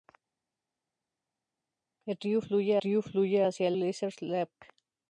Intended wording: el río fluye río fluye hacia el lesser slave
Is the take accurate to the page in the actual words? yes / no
yes